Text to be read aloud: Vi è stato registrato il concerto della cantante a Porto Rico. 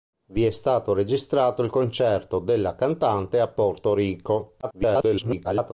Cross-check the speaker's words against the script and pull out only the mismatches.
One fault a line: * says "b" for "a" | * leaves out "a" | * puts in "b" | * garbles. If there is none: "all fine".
* garbles